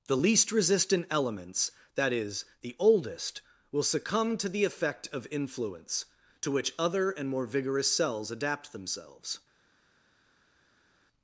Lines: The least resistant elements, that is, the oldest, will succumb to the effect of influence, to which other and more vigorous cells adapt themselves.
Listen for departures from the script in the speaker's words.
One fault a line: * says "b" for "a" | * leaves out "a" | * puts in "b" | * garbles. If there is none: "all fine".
all fine